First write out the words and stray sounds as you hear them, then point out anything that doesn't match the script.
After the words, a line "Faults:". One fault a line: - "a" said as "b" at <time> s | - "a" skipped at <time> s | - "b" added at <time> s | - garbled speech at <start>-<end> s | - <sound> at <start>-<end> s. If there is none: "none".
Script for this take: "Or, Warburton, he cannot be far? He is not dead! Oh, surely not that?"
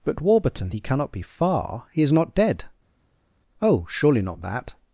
"But, Warburton, he cannot be far? He is not dead! Oh, surely not that?"
Faults:
- "Or" said as "But" at 0.0 s